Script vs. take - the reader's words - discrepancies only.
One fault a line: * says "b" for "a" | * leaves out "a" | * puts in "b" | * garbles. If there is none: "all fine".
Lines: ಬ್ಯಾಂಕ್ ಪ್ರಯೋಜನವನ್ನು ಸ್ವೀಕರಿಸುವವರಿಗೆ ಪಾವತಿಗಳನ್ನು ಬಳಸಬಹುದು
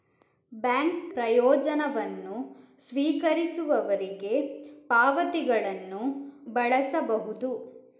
all fine